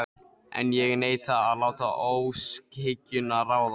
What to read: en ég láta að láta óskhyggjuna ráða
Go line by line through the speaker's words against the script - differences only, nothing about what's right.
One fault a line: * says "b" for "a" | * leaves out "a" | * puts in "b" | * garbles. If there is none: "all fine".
* says "neita" for "láta"